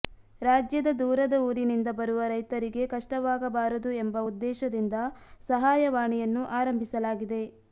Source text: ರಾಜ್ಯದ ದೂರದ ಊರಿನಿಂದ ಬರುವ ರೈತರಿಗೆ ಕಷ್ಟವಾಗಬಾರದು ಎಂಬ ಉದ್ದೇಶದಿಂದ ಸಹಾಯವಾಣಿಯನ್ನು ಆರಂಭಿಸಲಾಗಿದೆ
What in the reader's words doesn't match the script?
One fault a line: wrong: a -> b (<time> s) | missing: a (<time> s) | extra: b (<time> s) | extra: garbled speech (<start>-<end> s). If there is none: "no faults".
no faults